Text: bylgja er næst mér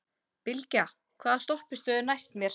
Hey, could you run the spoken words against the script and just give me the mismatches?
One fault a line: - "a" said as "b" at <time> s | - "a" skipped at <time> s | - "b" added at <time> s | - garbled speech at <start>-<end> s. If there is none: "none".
- "hvaða stoppistöð" added at 1.2 s